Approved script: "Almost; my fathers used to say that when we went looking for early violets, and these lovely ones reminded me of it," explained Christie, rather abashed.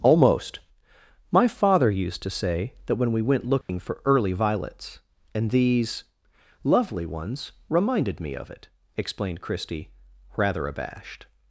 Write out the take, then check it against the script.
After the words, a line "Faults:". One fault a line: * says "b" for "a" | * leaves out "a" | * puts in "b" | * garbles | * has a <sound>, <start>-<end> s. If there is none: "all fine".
"Almost; my father used to say that when we went looking for early violets, and these lovely ones reminded me of it," explained Christie, rather abashed.
Faults:
* says "father" for "fathers"
* has a dropout, 3.6-3.7 s